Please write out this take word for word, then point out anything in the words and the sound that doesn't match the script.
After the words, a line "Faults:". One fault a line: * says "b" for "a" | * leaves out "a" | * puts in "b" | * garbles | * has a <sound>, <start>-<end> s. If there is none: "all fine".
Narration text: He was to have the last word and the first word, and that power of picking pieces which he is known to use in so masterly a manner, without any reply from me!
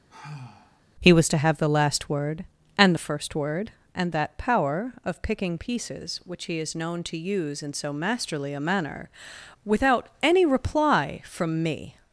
He was to have the last word and the first word, and that power of picking pieces which he is known to use in so masterly a manner, without any reply from me!
Faults:
* has a sigh, 0.1-0.8 s